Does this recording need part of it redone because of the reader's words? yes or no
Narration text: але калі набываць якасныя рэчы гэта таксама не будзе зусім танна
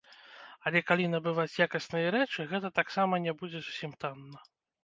no